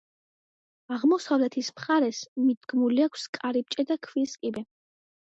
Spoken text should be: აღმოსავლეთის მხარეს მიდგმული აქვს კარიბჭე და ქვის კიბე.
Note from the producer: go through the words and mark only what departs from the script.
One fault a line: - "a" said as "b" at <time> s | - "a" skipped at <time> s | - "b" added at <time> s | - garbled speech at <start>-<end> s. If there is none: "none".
none